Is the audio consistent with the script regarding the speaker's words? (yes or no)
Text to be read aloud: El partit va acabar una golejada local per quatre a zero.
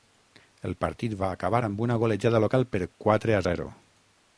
no